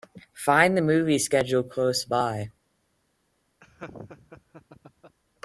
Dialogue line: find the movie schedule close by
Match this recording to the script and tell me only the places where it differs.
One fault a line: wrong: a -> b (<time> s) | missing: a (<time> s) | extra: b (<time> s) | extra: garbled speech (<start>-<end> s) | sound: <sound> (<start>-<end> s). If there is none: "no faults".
sound: laugh (3.6-5.2 s)